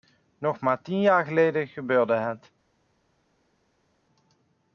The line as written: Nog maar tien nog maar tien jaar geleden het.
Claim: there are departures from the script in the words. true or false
true